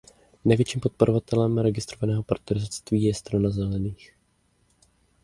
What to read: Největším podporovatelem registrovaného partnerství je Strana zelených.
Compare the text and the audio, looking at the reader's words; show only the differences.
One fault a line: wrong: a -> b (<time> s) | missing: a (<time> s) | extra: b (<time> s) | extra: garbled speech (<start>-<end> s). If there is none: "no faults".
no faults